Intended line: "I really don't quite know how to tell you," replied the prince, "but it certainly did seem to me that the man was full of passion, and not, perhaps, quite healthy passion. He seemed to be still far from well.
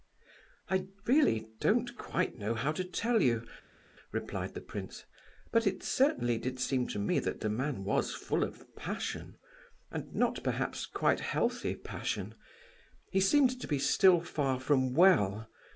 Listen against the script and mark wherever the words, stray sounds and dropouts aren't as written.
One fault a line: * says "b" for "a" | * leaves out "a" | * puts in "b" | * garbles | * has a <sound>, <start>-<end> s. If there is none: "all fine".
all fine